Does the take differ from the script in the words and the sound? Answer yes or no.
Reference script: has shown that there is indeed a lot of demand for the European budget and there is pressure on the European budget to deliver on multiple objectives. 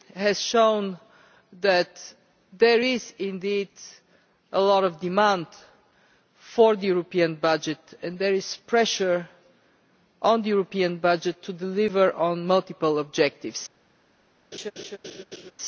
yes